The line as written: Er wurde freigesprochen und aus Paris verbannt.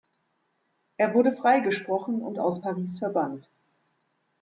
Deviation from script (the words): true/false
false